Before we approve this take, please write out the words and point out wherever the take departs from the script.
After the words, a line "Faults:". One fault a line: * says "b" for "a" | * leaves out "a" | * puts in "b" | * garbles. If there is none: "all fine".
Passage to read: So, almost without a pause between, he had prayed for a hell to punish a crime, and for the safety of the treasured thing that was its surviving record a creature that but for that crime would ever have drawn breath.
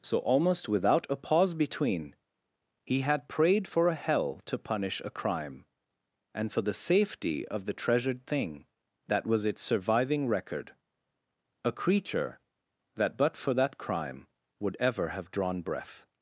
So, almost without a pause between, he had prayed for a hell to punish a crime, and for the safety of the treasured thing that was its surviving record a creature that but for that crime would ever have drawn breath.
Faults:
all fine